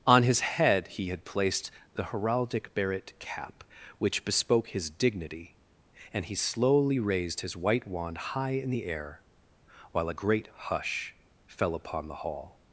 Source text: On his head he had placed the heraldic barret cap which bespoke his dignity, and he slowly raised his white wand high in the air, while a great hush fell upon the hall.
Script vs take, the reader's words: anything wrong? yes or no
no